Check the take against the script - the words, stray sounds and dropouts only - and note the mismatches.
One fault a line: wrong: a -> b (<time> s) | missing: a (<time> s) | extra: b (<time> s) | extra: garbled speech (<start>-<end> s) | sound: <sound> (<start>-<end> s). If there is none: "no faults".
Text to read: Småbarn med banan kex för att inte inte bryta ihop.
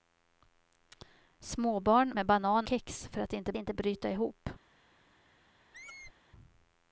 sound: squeak (5.7-6.1 s)